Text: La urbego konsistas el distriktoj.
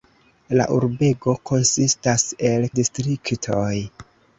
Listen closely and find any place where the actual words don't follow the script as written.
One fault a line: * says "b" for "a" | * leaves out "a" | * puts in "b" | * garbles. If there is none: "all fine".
all fine